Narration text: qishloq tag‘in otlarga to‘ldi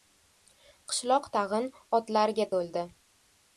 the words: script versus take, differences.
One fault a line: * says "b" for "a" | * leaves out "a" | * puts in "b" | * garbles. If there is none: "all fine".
all fine